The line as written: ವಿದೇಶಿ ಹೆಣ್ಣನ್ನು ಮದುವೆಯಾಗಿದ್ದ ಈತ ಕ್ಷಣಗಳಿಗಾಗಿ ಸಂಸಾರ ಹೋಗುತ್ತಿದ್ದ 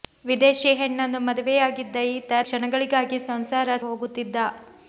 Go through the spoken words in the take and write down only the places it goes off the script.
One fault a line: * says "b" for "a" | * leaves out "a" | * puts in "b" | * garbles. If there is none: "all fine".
all fine